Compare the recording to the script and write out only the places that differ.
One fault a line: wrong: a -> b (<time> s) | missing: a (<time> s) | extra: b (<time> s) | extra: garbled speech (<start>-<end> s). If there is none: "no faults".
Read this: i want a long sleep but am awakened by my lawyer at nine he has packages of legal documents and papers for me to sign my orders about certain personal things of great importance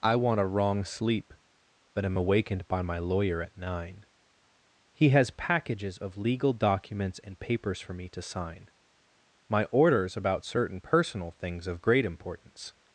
wrong: long -> wrong (0.5 s)